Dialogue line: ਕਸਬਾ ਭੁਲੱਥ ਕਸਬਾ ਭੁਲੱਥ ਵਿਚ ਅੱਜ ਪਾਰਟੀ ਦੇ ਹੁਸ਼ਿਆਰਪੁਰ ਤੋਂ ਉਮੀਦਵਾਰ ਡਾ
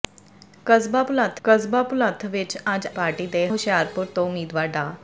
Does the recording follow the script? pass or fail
pass